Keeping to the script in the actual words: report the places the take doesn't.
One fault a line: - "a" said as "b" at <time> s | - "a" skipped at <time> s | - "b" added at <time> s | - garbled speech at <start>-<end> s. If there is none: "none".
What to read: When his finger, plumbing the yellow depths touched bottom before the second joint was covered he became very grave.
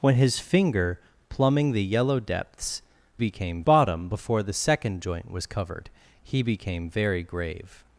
- "touched" said as "became" at 3.2 s